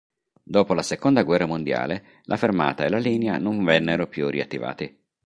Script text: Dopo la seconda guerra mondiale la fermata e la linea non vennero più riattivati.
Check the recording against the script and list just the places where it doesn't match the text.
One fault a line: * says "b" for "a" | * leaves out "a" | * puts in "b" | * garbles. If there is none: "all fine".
all fine